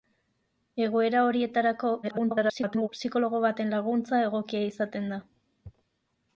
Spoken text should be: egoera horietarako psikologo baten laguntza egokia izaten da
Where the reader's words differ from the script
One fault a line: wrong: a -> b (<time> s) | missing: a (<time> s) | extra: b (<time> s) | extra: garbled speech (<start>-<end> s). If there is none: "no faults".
extra: garbled speech (2.0-2.9 s)